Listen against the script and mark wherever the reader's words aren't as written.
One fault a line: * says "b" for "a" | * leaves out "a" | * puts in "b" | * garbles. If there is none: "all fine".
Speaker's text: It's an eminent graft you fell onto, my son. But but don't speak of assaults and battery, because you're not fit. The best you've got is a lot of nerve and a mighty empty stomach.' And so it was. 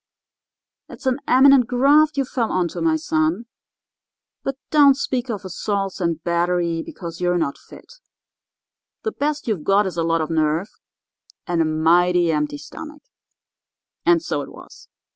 * leaves out "but"